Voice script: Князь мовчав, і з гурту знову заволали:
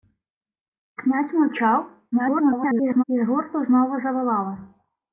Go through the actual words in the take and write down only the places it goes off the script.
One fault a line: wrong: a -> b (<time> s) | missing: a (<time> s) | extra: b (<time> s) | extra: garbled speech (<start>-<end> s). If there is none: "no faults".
extra: garbled speech (2.1-3.0 s)